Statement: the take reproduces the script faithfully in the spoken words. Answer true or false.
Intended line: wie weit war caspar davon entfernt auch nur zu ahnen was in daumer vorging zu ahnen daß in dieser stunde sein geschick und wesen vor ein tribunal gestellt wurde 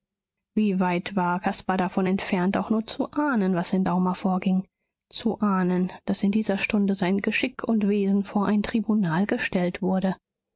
true